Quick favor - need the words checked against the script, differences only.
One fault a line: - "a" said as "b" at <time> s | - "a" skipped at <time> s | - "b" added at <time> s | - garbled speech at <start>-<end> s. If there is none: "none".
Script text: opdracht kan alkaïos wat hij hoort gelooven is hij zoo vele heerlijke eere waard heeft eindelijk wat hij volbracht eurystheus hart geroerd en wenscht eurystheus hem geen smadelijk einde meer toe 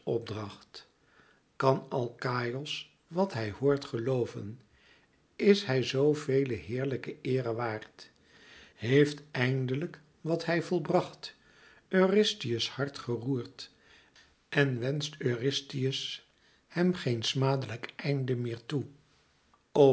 none